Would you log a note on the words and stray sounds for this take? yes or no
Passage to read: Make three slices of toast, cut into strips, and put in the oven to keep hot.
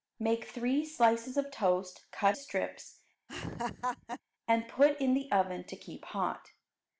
yes